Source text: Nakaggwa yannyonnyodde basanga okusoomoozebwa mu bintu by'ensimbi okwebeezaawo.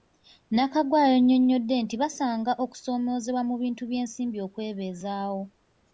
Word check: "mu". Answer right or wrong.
right